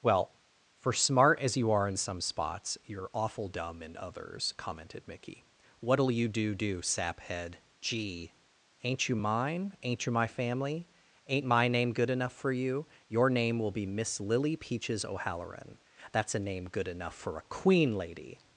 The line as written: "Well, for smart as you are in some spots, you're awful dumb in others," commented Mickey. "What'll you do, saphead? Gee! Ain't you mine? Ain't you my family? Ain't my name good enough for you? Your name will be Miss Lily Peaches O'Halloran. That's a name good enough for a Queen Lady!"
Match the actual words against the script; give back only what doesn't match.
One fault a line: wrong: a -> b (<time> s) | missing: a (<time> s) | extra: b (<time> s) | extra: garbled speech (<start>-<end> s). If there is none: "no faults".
extra: do (6.6 s)